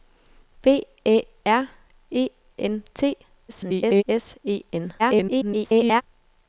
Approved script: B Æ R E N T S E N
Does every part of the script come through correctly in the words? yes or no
no